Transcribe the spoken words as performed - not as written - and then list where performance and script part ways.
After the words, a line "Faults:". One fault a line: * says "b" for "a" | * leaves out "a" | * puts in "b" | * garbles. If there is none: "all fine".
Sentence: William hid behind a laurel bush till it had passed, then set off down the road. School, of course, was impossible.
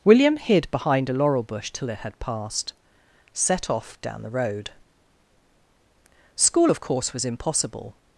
William hid behind a laurel bush till it had passed, set off down the road. School, of course, was impossible.
Faults:
* leaves out "then"